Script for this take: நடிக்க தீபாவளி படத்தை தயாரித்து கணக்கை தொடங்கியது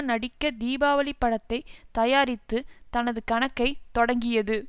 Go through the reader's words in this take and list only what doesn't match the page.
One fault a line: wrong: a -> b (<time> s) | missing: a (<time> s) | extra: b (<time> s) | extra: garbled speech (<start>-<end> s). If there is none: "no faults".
extra: தனது (2.9 s)